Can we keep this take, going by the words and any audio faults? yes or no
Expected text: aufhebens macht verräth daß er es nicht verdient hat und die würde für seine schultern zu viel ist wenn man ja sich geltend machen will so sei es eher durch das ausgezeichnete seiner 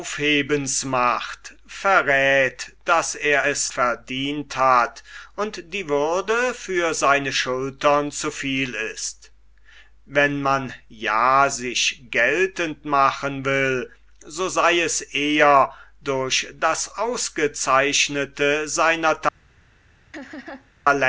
no